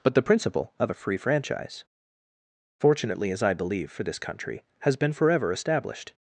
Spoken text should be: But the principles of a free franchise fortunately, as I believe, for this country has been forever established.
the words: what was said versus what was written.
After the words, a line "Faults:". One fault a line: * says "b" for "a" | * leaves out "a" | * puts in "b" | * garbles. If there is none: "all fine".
But the principle of a free franchise fortunately, as I believe, for this country has been forever established.
Faults:
* says "principle" for "principles"